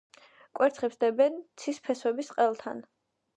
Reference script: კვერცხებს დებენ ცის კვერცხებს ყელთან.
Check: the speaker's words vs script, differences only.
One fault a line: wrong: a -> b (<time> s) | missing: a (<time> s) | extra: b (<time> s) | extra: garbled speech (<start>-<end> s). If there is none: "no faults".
wrong: კვერცხებს -> ფესვების (1.9 s)